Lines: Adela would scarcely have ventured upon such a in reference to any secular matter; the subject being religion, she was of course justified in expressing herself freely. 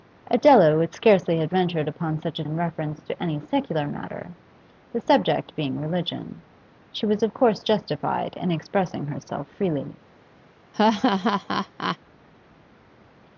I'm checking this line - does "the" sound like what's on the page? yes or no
yes